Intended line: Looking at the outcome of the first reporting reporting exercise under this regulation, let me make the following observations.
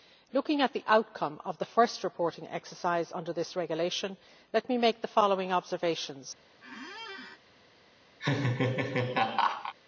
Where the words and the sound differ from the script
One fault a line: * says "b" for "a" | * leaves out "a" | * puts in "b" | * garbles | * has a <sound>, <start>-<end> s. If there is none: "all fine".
* leaves out "reporting"
* has a squeak, 6.6-7.4 s
* has a laugh, 8.2-9.7 s